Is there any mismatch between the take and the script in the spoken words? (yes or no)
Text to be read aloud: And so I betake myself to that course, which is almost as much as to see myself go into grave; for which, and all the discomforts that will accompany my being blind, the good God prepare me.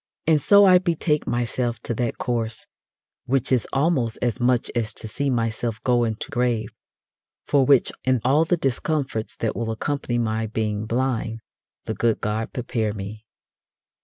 no